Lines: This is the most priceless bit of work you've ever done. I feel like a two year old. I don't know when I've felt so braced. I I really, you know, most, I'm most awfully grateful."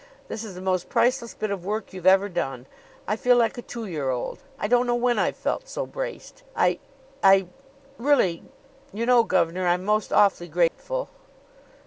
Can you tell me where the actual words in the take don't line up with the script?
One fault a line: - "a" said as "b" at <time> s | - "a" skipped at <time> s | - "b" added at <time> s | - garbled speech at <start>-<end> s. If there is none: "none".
- "most" said as "gov'nor" at 9.2 s